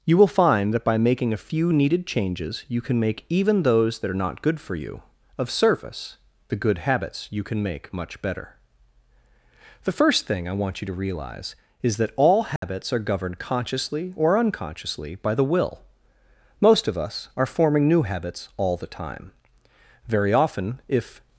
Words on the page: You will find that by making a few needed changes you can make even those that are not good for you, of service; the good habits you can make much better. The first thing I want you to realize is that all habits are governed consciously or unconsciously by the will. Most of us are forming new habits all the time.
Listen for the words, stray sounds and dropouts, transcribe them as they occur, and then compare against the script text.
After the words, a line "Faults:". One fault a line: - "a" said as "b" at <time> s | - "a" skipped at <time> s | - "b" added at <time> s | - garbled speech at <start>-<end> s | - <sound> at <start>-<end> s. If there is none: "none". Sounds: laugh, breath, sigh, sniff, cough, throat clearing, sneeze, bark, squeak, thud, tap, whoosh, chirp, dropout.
You will find that by making a few needed changes you can make even those that are not good for you, of service; the good habits you can make much better. The first thing I want you to realize is that all habits are governed consciously or unconsciously by the will. Most of us are forming new habits all the time. Very often, if
Faults:
- dropout at 12.6-12.6 s
- "Very often if" added at 20.1 s